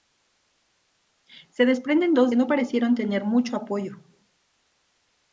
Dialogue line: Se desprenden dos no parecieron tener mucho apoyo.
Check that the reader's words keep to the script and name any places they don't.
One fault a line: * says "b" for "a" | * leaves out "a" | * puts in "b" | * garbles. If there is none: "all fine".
all fine